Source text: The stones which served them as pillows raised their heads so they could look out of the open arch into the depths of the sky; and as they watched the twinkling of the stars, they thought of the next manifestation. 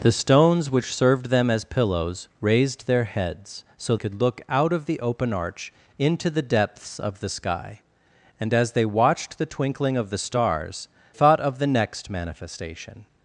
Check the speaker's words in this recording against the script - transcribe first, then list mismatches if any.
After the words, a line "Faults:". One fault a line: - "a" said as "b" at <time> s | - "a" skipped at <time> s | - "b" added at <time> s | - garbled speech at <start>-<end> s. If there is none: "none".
The stones which served them as pillows raised their heads so could look out of the open arch into the depths of the sky; and as they watched the twinkling of the stars, thought of the next manifestation.
Faults:
- "they" skipped at 4.0 s
- "they" skipped at 10.9 s